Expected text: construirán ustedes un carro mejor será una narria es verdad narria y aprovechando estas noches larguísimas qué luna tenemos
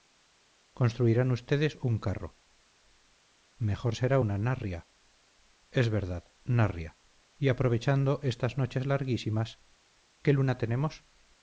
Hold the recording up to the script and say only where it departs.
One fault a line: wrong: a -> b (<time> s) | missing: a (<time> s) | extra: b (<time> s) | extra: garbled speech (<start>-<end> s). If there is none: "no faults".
no faults